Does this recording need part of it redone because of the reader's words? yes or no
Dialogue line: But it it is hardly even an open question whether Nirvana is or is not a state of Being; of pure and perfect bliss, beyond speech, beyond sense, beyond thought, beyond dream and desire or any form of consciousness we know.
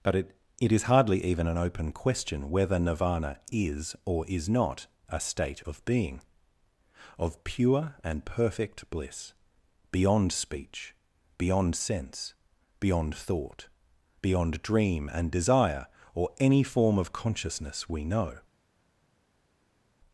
no